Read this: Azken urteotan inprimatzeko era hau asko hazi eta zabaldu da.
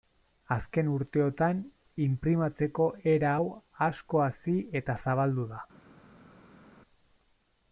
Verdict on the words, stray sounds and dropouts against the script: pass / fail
pass